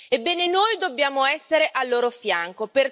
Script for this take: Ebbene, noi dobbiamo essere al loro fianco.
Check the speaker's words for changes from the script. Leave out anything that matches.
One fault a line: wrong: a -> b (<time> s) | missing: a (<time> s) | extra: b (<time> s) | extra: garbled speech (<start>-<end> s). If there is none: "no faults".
no faults